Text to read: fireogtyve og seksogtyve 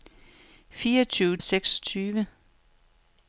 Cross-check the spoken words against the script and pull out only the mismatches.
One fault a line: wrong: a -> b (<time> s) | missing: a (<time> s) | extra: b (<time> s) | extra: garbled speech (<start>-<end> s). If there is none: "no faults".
no faults